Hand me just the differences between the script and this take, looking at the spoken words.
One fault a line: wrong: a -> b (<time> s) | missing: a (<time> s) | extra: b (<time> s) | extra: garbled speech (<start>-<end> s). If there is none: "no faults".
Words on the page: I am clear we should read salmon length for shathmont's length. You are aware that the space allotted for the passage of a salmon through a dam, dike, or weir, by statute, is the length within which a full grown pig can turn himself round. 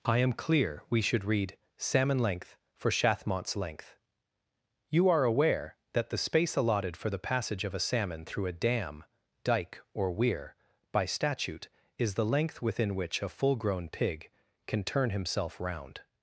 no faults